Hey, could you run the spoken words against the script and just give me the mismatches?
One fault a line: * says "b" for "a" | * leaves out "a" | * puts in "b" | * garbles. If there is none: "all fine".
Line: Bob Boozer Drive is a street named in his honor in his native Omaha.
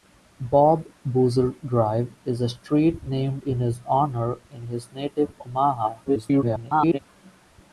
* garbles